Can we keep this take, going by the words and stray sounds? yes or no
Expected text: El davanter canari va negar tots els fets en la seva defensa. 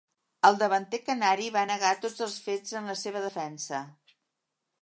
yes